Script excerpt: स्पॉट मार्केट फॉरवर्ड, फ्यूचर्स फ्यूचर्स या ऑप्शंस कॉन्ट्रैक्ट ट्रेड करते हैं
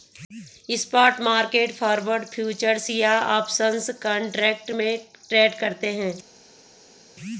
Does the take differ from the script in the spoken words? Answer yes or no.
yes